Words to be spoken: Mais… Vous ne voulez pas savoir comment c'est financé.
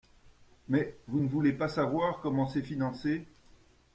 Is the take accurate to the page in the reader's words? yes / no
yes